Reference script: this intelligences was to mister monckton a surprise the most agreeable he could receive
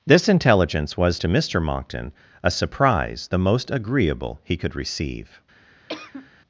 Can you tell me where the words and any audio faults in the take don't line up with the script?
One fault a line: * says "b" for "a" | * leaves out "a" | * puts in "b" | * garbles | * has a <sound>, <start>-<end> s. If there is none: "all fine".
* says "intelligence" for "intelligences"
* has a cough, 5.9-6.3 s